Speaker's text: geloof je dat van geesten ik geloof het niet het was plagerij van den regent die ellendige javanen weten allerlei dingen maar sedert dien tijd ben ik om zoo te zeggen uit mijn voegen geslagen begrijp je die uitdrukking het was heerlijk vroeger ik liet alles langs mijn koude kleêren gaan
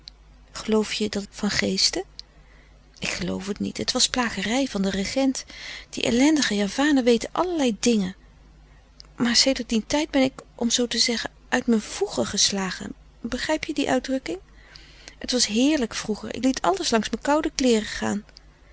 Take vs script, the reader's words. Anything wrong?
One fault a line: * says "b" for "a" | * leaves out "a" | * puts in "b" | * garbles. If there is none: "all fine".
all fine